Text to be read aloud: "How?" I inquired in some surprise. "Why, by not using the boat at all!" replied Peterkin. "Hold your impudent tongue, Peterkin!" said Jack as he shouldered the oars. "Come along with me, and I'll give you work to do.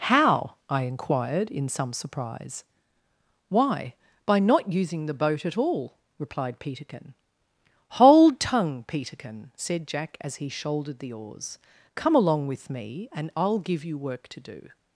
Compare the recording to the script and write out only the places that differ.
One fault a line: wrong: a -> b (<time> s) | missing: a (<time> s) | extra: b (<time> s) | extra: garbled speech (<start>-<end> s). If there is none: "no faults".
missing: your impudent (8.4 s)